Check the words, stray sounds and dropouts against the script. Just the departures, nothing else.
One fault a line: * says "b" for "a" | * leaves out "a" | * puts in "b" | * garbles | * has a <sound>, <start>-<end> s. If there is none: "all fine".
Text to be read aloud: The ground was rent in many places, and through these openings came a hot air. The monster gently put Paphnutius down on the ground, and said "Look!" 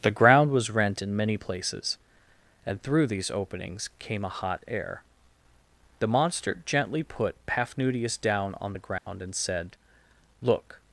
* has a dropout, 9.0-9.1 s